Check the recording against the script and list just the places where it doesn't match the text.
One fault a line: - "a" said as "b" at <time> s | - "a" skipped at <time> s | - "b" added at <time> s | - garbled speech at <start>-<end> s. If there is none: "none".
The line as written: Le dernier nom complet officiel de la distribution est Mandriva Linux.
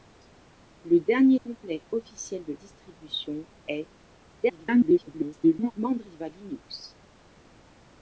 - "nom" skipped at 1.4 s
- "la" skipped at 2.5 s
- garbled speech at 4.4-5.7 s